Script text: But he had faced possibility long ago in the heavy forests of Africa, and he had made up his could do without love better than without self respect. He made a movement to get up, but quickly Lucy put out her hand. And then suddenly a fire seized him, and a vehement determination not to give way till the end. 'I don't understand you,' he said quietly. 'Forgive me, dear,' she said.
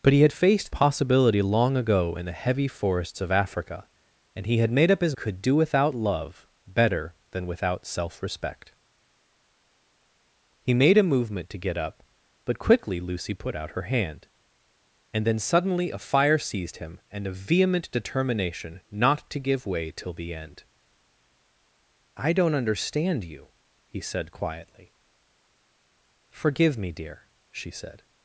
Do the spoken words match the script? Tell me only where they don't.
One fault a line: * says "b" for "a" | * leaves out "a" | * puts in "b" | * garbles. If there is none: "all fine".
all fine